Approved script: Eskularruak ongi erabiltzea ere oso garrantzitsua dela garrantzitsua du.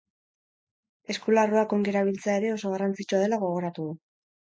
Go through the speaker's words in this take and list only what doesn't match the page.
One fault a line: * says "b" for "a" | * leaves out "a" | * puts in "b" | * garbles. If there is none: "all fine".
* says "gogoratu" for "garrantzitsua"